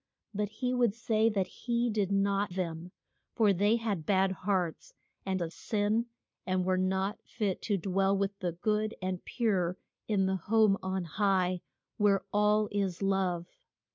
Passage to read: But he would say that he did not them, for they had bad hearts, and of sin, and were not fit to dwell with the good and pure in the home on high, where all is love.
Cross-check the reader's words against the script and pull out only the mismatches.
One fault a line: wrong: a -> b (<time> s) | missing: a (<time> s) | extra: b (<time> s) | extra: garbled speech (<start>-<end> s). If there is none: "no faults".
no faults